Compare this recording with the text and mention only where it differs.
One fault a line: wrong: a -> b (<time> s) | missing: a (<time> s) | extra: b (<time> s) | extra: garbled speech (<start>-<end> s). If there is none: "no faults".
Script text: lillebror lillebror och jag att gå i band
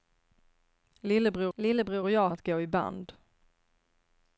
no faults